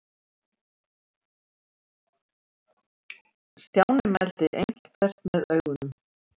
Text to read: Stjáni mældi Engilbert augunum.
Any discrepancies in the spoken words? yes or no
yes